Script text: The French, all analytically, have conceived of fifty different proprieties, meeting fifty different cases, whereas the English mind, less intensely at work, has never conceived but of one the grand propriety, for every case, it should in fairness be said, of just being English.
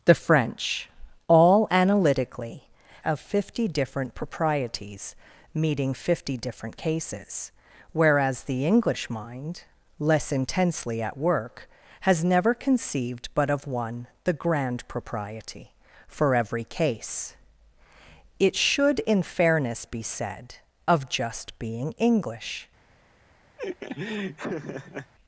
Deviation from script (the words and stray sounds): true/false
true